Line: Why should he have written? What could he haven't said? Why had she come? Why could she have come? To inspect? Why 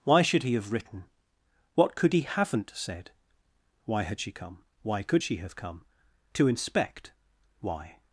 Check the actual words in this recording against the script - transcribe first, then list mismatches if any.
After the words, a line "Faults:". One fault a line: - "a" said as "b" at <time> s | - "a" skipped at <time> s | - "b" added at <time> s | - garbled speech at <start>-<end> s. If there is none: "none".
Why should he have written? What could he haven't said? Why had she come? Why could she have come? To inspect? Why
Faults:
none